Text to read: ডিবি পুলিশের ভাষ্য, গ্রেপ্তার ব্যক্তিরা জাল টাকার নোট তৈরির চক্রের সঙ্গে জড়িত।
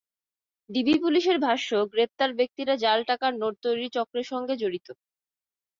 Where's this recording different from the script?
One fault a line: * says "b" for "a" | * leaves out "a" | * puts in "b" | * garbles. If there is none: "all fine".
all fine